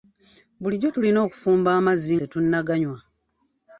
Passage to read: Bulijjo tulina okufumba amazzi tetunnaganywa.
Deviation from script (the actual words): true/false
false